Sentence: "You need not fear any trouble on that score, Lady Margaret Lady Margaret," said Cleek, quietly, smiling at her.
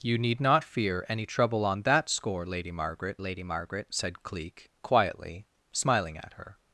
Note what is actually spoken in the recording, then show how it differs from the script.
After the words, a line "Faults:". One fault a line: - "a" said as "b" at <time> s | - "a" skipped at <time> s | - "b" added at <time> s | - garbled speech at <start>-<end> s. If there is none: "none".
"You need not fear any trouble on that score, Lady Margaret Lady Margaret," said Cleek, quietly, smiling at her.
Faults:
none